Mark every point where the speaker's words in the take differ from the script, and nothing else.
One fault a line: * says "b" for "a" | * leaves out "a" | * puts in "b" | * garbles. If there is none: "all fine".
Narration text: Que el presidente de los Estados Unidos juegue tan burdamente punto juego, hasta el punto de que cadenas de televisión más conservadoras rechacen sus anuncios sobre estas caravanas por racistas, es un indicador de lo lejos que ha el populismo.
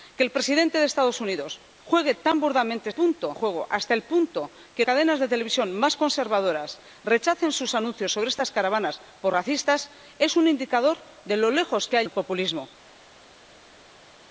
all fine